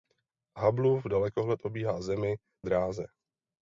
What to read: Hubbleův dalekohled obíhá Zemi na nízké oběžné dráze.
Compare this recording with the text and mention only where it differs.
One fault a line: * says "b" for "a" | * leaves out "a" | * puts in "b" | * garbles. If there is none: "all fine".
* leaves out "na nízké oběžné"